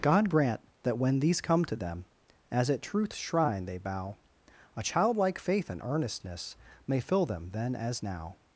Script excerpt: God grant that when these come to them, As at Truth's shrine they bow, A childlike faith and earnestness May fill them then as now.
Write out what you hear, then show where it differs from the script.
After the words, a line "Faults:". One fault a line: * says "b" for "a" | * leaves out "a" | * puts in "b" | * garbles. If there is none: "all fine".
God grant that when these come to them, As at Truth's shrine they bow, A childlike faith and earnestness May fill them then as now.
Faults:
all fine